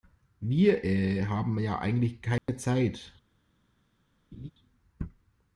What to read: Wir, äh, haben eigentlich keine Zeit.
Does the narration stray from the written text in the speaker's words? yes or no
yes